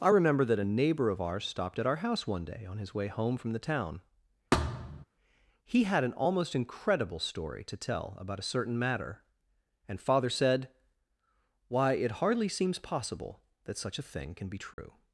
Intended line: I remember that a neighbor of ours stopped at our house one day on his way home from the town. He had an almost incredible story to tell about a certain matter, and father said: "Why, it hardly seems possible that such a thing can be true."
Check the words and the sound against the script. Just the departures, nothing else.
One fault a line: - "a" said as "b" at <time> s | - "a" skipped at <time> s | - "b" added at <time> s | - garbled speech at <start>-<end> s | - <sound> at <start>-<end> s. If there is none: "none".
- thud at 4.5-5.0 s
- dropout at 14.7-14.8 s